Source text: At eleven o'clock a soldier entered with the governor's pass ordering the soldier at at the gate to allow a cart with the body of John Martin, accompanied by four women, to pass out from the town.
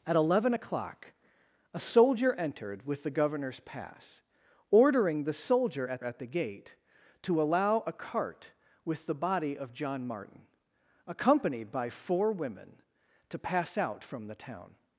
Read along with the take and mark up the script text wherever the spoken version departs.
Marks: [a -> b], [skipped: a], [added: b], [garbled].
At eleven o'clock a soldier entered with the governor's pass ordering the soldier at at the gate to allow a cart with the body of John Martin, accompanied by four women, to pass out from the town.